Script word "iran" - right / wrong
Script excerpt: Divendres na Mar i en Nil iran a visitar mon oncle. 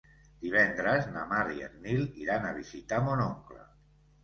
right